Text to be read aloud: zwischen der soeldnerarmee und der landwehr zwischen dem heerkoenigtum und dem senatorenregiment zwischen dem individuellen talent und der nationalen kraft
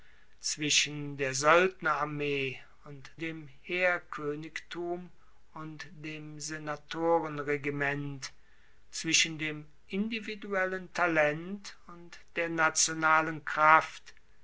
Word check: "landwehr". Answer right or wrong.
wrong